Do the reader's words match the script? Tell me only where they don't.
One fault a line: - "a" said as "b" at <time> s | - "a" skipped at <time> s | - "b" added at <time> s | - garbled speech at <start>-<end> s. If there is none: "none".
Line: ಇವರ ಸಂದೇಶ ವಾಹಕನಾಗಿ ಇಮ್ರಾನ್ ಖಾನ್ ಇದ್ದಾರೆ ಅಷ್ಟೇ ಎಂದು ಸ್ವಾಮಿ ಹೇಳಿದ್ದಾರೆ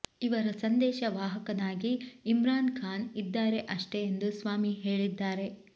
none